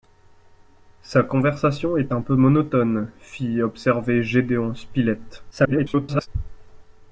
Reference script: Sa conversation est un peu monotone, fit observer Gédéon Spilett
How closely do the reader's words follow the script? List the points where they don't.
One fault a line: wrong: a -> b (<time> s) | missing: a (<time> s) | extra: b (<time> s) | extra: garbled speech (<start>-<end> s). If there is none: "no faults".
extra: garbled speech (5.5-6.3 s)